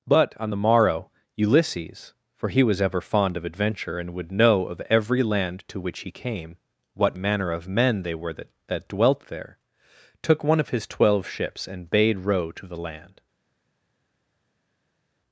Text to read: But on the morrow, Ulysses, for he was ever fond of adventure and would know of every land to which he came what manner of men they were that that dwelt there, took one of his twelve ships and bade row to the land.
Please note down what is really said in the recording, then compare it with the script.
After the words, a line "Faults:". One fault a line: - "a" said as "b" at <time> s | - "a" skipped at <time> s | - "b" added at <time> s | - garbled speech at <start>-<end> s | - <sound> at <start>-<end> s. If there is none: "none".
But on the morrow, Ulysses, for he was ever fond of adventure and would know of every land to which he came what manner of men they were that that dwelt there, took one of his twelve ships and bade row to the land.
Faults:
none